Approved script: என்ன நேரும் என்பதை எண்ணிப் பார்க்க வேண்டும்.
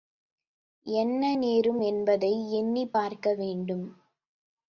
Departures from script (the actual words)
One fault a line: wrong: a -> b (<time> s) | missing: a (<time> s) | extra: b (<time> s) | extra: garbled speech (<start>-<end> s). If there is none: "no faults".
no faults